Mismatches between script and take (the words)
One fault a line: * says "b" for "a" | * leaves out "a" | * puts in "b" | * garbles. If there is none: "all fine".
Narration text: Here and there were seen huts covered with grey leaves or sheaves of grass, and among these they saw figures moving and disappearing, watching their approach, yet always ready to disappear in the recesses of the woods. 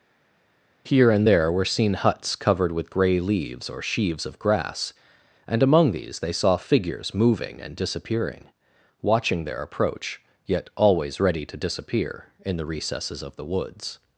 all fine